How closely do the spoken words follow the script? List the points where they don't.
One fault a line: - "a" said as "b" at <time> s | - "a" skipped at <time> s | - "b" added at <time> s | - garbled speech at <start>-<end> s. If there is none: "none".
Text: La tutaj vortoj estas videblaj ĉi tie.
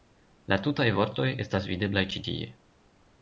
none